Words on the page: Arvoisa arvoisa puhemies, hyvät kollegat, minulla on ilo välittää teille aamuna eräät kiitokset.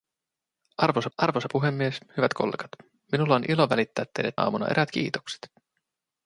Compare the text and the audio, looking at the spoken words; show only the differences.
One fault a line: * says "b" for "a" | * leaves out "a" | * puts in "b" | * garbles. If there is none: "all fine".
all fine